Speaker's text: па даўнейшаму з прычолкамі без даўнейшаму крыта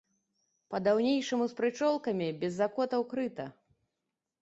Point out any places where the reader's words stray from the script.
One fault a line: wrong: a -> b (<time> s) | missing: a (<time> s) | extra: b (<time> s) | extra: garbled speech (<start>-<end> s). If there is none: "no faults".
wrong: даўнейшаму -> закотаў (2.6 s)